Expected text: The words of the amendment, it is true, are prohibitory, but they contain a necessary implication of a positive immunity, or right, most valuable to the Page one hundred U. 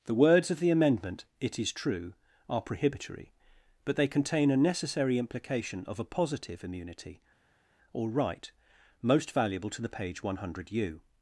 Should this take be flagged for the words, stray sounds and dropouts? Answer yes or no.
no